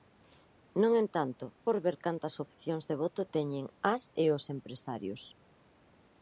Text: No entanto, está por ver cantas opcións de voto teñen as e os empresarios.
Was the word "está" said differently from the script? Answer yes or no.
yes